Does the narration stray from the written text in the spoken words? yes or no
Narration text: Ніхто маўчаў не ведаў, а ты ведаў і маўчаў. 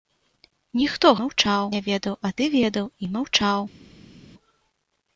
no